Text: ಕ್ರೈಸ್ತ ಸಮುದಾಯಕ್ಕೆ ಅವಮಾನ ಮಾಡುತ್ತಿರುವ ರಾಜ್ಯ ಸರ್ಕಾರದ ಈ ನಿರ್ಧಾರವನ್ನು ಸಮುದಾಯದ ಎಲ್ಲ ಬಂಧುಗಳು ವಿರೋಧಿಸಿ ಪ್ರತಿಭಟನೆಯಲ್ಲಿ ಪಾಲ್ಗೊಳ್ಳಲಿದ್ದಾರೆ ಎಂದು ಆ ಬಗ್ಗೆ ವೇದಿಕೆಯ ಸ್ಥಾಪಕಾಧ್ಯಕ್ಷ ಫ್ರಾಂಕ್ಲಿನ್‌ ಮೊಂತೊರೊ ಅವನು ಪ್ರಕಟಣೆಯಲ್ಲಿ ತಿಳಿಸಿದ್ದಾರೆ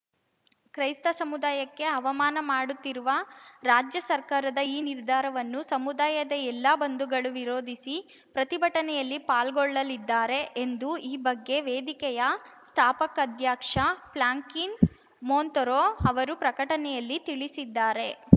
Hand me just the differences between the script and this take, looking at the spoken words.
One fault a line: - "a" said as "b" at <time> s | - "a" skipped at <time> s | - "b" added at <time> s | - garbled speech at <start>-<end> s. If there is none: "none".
- "ಆ" said as "ಈ" at 11.0 s
- "ಅವನು" said as "ಅವರು" at 16.1 s